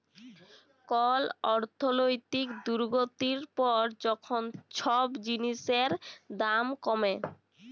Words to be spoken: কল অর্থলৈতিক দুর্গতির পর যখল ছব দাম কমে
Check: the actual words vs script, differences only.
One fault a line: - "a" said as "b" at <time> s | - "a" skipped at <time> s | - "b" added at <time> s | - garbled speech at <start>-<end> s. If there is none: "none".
- "জিলিসের" added at 5.2 s